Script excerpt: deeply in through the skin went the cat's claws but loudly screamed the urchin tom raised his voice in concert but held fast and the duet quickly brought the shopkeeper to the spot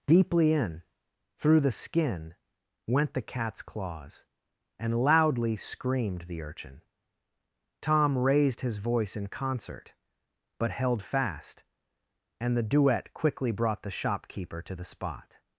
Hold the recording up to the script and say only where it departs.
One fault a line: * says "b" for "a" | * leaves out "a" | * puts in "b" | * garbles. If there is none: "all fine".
* says "and" for "but"